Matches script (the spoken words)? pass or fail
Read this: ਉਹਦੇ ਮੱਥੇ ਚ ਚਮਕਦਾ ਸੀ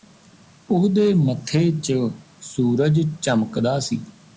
fail